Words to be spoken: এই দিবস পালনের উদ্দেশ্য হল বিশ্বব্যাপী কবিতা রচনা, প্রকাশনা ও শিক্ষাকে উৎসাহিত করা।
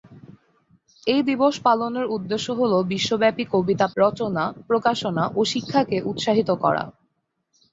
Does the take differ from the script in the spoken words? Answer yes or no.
no